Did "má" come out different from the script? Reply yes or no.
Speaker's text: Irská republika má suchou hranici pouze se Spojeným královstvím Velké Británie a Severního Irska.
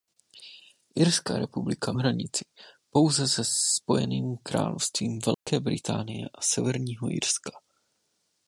yes